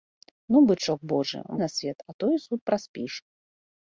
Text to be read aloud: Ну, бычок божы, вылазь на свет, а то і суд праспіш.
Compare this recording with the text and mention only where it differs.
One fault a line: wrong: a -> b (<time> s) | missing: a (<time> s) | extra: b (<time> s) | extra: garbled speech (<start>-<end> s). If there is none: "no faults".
missing: вылазь (1.4 s)